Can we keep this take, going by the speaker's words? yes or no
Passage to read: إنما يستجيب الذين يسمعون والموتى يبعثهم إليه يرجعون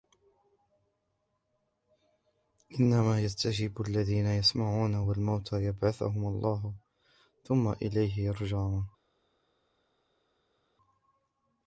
no